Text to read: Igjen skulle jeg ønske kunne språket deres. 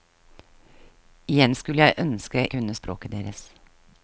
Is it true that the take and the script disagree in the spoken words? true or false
false